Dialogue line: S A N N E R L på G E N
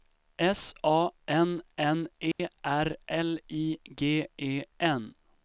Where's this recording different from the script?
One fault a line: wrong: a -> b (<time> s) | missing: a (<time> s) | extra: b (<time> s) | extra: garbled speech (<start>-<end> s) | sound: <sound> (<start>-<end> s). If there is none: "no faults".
sound: dropout (2.3-2.4 s)
wrong: på -> I (3.5 s)